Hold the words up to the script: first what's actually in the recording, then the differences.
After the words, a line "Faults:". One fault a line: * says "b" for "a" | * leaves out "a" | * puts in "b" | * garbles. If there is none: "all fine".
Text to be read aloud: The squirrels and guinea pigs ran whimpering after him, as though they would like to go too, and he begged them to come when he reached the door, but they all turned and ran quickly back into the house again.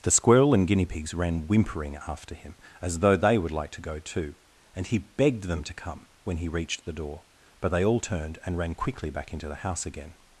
The squirrel and guinea pigs ran whimpering after him, as though they would like to go too, and he begged them to come when he reached the door, but they all turned and ran quickly back into the house again.
Faults:
* says "squirrel" for "squirrels"